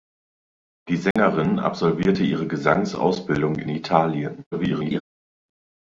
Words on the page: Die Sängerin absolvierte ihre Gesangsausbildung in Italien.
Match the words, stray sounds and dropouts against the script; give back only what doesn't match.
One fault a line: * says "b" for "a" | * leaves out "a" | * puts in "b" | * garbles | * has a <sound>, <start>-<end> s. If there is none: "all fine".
* has a dropout, 1.1-1.2 s
* garbles